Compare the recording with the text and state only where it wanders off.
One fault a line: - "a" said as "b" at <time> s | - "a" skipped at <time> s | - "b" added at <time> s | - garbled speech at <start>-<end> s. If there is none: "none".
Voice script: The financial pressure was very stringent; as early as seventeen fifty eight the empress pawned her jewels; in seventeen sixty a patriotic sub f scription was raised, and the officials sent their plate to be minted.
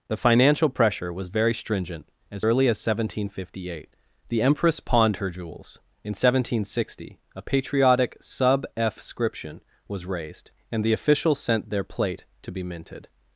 none